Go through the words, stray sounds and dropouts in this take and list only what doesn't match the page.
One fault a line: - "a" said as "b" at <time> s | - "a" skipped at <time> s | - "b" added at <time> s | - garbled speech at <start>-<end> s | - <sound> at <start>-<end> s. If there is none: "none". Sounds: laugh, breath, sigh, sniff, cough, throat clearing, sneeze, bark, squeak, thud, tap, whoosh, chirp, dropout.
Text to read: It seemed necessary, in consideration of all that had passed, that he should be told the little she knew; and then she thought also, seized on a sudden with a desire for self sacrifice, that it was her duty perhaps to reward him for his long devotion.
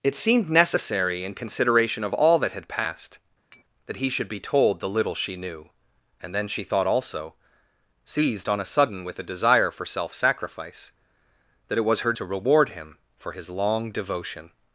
- tap at 3.5-3.6 s
- "duty perhaps" skipped at 12.1 s